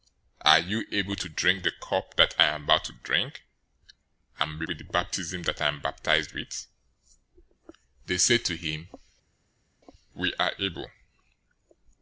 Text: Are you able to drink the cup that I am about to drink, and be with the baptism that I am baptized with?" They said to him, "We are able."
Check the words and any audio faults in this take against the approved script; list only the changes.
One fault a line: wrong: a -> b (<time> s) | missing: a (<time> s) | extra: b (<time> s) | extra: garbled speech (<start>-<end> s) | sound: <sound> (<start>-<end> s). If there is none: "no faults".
no faults